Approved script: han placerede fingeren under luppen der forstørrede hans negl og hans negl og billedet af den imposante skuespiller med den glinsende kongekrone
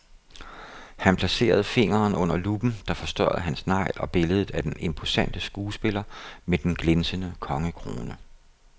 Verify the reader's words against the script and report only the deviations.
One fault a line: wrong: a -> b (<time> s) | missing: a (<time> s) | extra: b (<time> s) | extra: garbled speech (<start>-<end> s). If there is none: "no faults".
missing: hans negl og (4.1 s)